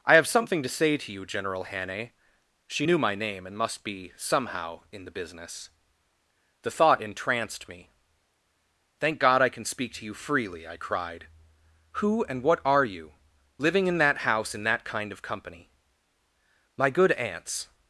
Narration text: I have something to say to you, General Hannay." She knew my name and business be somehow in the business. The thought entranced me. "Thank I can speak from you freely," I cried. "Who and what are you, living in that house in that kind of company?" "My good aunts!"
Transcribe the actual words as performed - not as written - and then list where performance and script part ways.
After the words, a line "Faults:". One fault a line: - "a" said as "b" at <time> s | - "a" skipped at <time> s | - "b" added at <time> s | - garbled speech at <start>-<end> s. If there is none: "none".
I have something to say to you, General Hannay." She knew my name and must be somehow in the business. The thought entranced me. "Thank God I can speak to you freely," I cried. "Who and what are you, living in that house in that kind of company?" "My good aunts!"
Faults:
- "business" said as "must" at 3.6 s
- "God" added at 9.2 s
- "from" said as "to" at 9.9 s